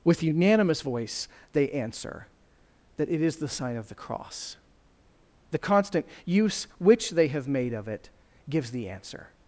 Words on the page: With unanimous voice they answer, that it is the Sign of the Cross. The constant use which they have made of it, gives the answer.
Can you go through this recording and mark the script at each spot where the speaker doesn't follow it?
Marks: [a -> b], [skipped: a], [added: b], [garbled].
With unanimous voice they answer, that it is the Sign of the Cross. The constant use which they have made of it, gives the answer.